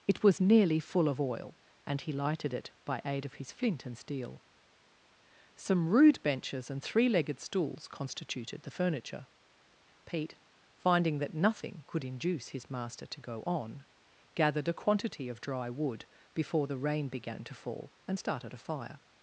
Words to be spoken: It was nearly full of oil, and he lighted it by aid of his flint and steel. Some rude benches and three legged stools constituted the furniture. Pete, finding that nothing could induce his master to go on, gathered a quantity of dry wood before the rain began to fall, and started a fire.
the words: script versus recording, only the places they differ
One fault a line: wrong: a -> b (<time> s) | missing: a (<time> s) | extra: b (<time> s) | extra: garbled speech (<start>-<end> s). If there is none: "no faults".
no faults